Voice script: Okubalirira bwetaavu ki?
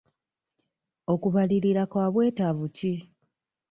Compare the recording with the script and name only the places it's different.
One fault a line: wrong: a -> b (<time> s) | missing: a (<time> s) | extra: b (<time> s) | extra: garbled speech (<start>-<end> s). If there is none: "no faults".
extra: kwa (1.9 s)